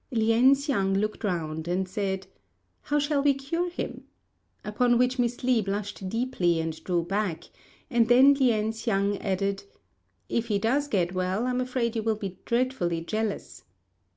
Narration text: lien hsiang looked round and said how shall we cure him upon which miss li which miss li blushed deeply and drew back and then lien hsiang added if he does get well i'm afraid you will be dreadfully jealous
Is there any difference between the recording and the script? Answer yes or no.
yes